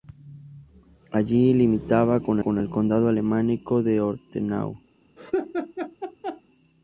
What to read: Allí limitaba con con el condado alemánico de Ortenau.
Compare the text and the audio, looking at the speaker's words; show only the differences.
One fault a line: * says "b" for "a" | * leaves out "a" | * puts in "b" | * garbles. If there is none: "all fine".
all fine